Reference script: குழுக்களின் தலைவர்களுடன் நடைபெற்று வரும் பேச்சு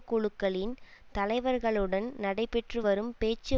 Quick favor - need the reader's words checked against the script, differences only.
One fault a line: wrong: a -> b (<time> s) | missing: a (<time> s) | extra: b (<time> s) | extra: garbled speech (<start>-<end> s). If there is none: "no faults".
no faults